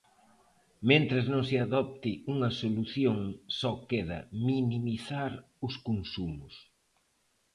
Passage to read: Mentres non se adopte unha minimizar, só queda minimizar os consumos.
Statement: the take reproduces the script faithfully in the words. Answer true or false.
false